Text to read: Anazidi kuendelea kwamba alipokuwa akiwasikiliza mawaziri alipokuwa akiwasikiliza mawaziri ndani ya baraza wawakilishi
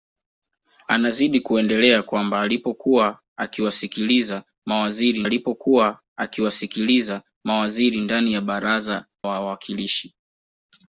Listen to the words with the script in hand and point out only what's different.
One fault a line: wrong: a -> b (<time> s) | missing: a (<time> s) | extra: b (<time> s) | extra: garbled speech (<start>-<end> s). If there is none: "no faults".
no faults